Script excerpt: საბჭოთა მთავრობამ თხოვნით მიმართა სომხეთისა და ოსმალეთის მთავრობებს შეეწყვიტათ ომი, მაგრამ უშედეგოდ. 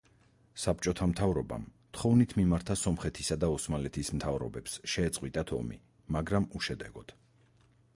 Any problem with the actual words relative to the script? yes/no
no